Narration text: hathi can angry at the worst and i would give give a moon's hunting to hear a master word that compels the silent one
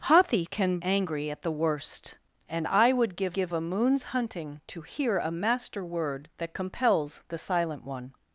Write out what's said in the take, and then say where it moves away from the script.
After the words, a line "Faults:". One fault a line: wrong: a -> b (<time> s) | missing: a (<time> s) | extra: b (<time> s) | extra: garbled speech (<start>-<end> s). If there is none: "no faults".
hathi can angry at the worst and i would give give a moon's hunting to hear a master word that compels the silent one
Faults:
no faults